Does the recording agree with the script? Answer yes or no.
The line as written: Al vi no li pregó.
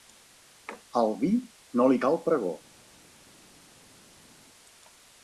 no